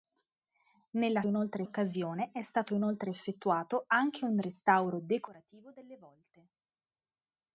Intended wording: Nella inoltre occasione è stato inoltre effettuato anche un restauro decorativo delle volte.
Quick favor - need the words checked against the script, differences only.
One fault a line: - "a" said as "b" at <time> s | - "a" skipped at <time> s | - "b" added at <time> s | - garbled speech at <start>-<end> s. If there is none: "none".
none